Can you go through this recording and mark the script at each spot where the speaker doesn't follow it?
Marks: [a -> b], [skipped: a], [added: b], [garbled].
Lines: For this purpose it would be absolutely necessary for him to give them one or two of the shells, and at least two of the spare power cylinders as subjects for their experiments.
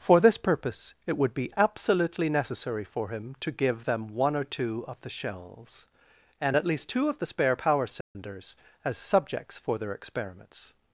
For this purpose it would be absolutely necessary for him to give them one or two of the shells, and at least two of the spare power cylinders as subjects for their experiments.